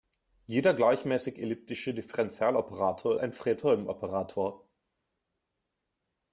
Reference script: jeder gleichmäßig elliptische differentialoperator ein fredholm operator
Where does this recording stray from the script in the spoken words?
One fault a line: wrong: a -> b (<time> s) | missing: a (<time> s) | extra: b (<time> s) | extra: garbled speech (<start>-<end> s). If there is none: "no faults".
no faults